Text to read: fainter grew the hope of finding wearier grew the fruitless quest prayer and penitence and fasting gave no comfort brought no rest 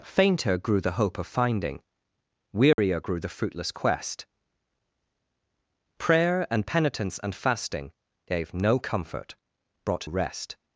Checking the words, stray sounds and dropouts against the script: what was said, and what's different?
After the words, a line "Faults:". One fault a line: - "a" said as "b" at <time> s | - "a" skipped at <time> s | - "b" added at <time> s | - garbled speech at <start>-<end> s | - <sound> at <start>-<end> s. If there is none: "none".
fainter grew the hope of finding wearier grew the fruitless quest prayer and penitence and fasting gave no comfort brought rest
Faults:
- dropout at 2.7-2.8 s
- "no" skipped at 10.1 s